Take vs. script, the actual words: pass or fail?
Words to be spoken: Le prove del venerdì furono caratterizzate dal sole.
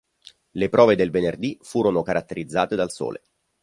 pass